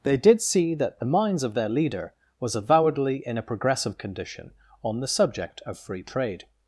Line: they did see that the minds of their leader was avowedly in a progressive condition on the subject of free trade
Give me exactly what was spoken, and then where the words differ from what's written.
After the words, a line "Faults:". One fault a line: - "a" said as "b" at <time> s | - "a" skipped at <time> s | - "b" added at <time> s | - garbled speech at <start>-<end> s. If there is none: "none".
they did see that the minds of their leader was avowedly in a progressive condition on the subject of free trade
Faults:
none